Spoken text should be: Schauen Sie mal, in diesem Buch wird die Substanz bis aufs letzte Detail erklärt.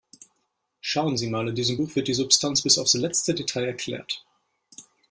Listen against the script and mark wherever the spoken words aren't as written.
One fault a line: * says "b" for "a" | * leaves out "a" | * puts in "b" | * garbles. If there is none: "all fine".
all fine